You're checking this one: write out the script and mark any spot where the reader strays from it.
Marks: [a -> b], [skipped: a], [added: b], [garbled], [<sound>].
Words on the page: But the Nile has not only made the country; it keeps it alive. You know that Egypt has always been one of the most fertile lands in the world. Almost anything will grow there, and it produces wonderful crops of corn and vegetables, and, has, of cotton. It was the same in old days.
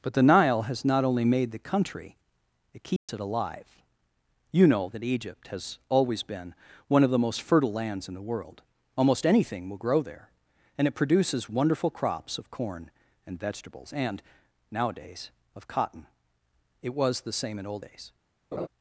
But the Nile has not only made the country; it keeps [dropout] it alive. You know that Egypt has always been one of the most fertile lands in the world. Almost anything will grow there, and it produces wonderful crops of corn and vegetables, and, [has, -> nowadays] of cotton. It was the same in old days. [laugh]